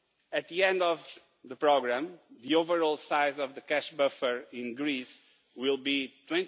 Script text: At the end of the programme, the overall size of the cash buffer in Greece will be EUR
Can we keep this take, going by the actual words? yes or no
yes